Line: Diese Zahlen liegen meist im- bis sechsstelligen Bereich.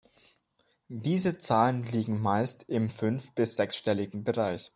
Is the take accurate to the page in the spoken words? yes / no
no